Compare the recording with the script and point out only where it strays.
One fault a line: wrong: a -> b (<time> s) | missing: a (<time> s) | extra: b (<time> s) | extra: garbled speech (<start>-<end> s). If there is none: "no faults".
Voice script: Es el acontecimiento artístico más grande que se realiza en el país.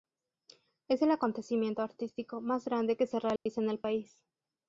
no faults